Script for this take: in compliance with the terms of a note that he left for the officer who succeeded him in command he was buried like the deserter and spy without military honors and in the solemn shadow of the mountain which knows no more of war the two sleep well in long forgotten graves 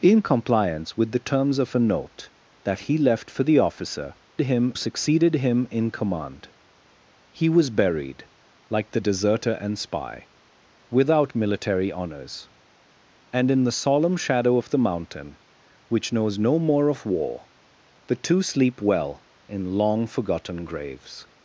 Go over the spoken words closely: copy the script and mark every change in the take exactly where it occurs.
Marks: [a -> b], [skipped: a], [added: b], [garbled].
in compliance with the terms of a note that he left for the officer [who -> him] succeeded him in command he was buried like the deserter and spy without military honors and in the solemn shadow of the mountain which knows no more of war the two sleep well in long forgotten graves